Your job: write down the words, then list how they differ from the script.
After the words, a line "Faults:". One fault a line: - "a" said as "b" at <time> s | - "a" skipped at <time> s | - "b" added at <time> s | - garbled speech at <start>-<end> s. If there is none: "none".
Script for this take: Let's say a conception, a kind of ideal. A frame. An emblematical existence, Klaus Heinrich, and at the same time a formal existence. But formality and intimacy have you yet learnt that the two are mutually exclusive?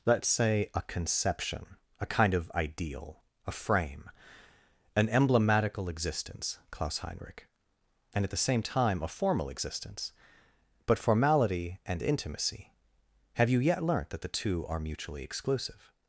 Let's say a conception, a kind of ideal. A frame. An emblematical existence, Klaus Heinrich, and at the same time a formal existence. But formality and intimacy have you yet learnt that the two are mutually exclusive?
Faults:
none